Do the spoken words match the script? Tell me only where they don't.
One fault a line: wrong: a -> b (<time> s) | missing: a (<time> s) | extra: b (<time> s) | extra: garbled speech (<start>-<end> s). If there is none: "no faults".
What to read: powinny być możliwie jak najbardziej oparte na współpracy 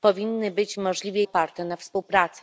missing: jak najbardziej (1.2 s)